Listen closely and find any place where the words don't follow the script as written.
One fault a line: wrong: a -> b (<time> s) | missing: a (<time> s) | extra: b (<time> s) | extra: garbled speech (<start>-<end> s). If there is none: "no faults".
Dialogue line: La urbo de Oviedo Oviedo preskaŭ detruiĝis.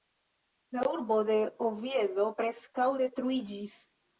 missing: Oviedo (2.3 s)